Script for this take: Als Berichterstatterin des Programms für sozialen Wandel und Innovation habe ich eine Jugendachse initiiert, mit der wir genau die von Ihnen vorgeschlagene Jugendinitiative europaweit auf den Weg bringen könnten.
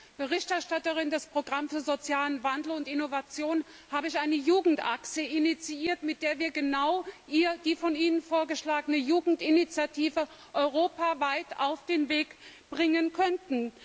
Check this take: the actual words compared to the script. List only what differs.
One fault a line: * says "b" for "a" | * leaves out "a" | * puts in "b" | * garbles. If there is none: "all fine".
all fine